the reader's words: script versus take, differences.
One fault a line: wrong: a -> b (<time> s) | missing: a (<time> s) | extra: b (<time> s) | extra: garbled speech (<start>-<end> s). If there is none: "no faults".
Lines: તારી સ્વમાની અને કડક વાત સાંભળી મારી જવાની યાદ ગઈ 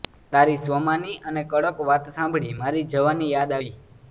no faults